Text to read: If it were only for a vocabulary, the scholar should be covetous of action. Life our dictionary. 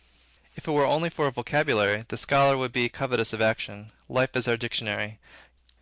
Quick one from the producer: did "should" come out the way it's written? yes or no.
no